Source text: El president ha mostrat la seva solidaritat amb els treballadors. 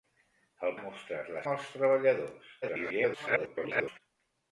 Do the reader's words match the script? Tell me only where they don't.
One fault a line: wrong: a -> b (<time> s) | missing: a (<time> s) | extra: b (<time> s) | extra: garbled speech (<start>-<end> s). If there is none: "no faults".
missing: president (0.7 s)
missing: seva solidaritat (1.4 s)
extra: garbled speech (2.6-4.0 s)